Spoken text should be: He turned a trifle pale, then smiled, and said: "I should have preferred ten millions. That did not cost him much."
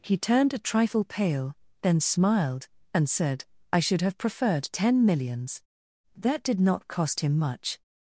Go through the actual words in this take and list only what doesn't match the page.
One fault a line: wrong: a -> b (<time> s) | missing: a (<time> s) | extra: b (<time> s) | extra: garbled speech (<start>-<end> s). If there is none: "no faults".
no faults